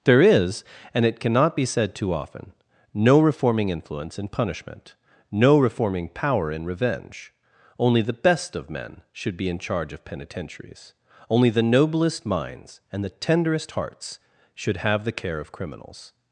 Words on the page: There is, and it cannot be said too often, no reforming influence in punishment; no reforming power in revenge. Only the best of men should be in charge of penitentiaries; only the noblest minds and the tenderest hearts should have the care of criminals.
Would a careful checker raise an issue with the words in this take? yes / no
no